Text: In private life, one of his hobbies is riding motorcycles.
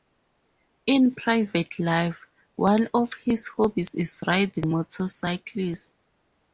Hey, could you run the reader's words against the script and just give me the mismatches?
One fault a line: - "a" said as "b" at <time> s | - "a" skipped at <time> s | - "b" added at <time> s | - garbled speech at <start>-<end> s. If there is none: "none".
none